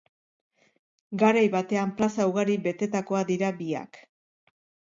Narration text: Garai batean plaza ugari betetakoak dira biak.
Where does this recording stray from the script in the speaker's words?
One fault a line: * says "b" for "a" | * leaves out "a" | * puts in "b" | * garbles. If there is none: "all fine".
all fine